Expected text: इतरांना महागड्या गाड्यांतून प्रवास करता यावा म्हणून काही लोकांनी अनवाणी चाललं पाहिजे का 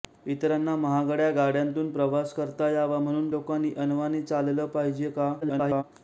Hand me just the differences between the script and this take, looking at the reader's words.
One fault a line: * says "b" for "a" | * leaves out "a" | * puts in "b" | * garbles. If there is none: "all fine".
* leaves out "काही"
* garbles